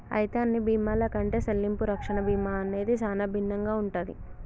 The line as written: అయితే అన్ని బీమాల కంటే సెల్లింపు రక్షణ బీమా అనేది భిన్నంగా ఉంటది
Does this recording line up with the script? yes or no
no